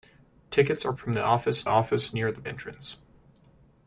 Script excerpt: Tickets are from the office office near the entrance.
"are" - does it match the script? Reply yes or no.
yes